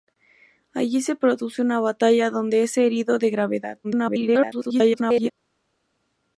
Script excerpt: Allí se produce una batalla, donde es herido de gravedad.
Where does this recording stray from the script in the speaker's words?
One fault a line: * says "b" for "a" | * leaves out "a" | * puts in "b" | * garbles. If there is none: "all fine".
* garbles